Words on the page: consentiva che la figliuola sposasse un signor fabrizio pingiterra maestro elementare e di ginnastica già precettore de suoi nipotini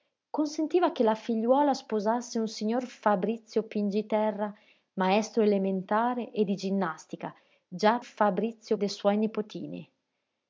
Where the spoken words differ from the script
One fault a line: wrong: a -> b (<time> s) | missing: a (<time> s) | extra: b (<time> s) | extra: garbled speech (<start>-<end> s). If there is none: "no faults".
wrong: precettore -> fabrizio (8.0 s)